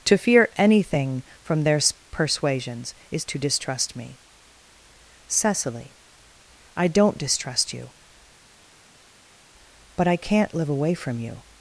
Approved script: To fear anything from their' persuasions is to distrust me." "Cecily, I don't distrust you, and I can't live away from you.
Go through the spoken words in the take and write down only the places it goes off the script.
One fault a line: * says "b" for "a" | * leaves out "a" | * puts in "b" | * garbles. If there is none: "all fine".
* says "but" for "and"